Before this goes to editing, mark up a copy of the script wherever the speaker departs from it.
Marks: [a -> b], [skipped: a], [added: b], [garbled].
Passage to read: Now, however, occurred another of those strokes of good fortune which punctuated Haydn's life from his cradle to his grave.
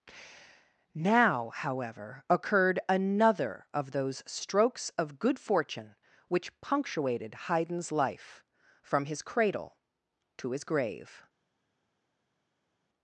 Now, however, occurred another of those strokes of good fortune which punctuated Haydn's life from his cradle to his grave.